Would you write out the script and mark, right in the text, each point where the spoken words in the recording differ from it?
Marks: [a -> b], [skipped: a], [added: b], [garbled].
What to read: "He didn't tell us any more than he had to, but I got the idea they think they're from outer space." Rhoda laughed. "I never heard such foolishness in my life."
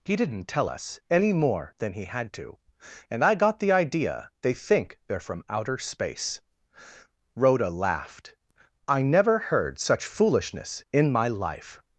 "He didn't tell us any more than he had to, [but -> and] I got the idea they think they're from outer space." Rhoda laughed. "I never heard such foolishness in my life."